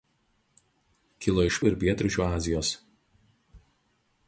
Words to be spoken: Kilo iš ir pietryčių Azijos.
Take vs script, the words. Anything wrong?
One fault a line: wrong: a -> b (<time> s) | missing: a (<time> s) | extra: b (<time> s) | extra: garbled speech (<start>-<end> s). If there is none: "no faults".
no faults